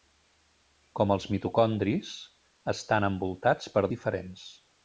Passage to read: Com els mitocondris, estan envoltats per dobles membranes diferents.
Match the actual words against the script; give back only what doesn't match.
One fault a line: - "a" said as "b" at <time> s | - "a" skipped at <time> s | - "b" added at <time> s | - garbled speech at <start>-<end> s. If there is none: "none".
- "dobles membranes" skipped at 3.9 s